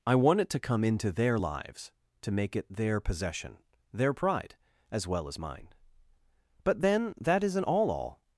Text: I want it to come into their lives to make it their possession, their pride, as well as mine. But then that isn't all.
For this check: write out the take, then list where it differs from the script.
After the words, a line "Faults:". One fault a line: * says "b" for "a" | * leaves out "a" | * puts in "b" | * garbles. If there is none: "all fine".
I want it to come into their lives to make it their possession, their pride, as well as mine. But then that isn't all all.
Faults:
* puts in "all"